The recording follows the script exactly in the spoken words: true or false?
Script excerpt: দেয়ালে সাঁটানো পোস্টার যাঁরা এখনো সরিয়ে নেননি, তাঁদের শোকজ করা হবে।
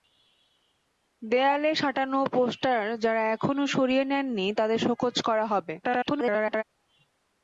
false